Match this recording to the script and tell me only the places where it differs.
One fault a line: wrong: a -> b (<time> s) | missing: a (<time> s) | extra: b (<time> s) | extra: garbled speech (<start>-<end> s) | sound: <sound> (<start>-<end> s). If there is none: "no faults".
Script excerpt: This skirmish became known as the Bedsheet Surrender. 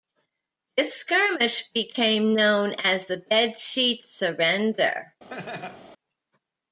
sound: laugh (5.3-5.9 s)